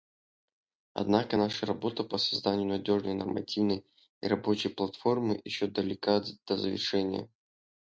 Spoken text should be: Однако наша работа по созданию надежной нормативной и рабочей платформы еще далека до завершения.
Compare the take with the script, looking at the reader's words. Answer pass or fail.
pass